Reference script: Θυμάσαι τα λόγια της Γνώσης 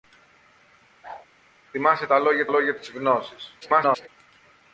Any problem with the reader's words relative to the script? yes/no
yes